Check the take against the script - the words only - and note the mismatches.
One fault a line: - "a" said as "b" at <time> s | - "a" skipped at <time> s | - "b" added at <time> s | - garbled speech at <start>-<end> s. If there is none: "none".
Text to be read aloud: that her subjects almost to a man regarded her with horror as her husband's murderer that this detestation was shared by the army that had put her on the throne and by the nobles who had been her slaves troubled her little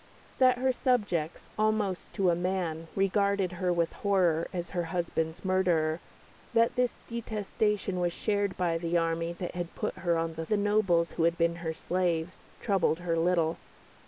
- "throne and by" skipped at 10.4 s